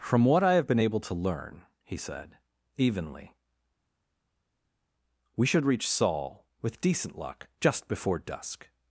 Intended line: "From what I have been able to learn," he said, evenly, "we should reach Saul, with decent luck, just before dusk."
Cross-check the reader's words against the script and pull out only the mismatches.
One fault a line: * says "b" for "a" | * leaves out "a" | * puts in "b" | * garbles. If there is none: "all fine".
all fine